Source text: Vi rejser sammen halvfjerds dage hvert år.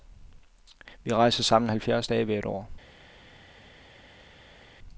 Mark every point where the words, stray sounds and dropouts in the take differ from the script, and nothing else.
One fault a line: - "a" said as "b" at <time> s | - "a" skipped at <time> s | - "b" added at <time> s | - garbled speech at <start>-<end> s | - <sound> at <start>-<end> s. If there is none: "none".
none